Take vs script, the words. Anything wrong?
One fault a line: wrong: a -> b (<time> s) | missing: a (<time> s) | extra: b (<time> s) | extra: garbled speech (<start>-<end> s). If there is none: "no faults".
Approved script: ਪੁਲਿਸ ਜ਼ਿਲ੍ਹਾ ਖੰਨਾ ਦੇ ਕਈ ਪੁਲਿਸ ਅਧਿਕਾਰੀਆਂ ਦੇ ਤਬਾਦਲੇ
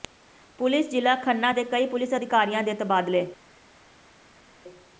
no faults